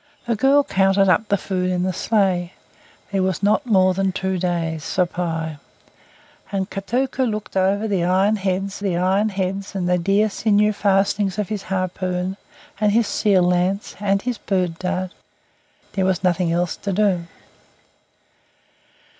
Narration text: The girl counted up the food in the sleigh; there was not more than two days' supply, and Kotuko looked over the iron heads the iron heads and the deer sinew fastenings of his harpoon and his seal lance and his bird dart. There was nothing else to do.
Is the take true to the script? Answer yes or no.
yes